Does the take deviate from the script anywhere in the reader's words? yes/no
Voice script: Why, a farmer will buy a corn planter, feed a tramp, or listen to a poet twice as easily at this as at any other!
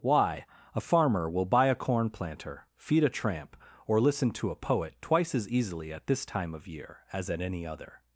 yes